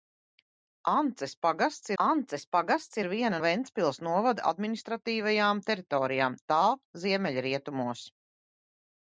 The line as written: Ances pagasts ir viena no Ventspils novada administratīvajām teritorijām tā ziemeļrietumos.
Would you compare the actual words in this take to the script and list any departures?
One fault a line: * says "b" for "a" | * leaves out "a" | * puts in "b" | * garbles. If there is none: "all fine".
* puts in "ances pagasts"
* leaves out "no"